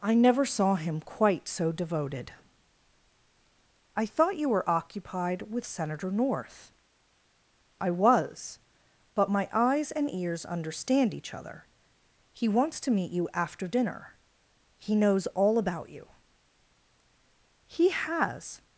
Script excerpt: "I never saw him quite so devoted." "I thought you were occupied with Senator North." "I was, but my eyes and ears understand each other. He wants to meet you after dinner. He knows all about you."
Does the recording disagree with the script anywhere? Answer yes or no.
yes